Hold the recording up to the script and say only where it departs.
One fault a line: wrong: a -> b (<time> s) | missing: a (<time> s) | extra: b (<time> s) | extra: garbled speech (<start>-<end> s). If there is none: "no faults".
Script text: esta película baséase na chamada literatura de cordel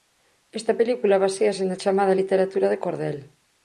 no faults